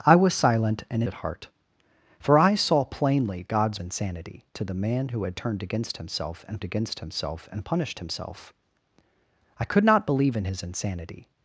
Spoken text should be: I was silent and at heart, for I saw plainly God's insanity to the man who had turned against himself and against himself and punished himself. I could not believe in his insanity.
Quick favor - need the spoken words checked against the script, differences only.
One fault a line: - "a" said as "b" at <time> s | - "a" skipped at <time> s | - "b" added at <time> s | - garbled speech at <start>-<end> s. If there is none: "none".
none